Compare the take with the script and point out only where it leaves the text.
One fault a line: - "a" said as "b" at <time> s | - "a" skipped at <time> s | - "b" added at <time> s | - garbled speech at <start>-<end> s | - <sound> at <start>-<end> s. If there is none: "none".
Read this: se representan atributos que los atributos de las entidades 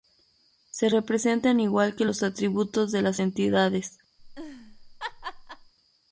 - "atributos" said as "igual" at 1.6 s
- laugh at 4.2-5.7 s